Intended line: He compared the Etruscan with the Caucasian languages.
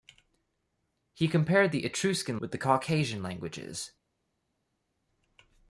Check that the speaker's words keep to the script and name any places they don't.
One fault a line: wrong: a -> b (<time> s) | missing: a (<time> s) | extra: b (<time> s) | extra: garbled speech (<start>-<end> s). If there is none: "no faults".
no faults